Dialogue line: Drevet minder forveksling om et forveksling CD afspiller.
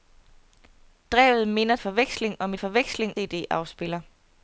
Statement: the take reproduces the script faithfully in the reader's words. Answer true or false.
true